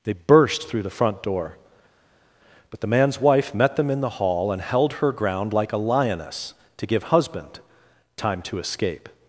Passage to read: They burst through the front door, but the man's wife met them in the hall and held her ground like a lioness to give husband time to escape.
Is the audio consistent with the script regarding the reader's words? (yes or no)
yes